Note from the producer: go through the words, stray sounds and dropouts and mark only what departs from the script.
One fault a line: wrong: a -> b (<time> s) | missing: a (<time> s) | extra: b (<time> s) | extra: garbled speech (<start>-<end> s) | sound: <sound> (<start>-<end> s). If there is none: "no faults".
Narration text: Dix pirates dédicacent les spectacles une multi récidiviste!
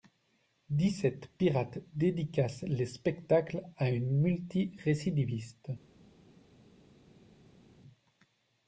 extra: sept (0.9 s)
extra: à (3.8 s)